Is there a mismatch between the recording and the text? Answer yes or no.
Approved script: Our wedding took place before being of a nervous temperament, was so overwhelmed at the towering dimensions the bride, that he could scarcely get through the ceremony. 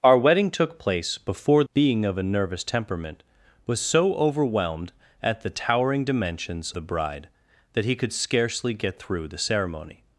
no